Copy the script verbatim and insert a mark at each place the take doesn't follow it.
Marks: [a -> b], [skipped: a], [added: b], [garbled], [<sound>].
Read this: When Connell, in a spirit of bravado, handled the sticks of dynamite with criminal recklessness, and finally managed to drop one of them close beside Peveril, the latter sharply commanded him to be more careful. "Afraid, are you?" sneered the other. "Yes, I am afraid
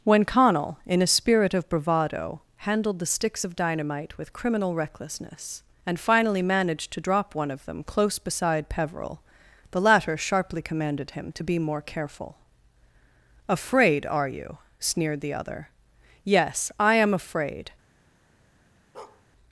When Connell, in a spirit of bravado, handled the sticks of dynamite with criminal recklessness, and finally managed to drop one of them close beside Peveril, the latter sharply commanded him to be more careful. "Afraid, are you?" sneered the other. "Yes, I am afraid [bark]